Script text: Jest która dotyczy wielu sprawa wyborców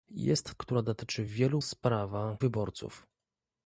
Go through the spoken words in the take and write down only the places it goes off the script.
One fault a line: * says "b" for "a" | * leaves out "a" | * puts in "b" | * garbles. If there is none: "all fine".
all fine